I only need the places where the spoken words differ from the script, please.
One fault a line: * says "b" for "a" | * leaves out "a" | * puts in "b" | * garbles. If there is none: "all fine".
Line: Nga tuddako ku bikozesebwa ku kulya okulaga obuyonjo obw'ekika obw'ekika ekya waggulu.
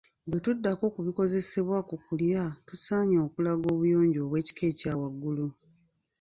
* says "Bwe" for "Nga"
* puts in "tusaanye"
* leaves out "obw'ekika"